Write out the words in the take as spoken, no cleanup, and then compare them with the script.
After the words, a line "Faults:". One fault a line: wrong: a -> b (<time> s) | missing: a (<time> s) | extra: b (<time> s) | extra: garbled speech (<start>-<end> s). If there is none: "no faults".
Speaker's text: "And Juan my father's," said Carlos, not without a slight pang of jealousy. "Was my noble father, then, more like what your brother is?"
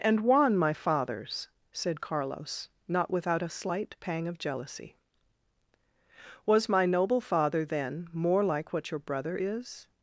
"And Juan my father's," said Carlos, not without a slight pang of jealousy. "Was my noble father, then, more like what your brother is?"
Faults:
no faults